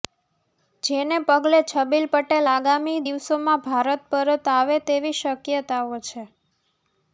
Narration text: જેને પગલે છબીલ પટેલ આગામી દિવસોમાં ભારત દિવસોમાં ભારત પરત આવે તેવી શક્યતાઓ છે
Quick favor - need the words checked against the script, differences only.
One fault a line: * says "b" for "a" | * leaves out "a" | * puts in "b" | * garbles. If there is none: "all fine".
* leaves out "દિવસોમાં ભારત"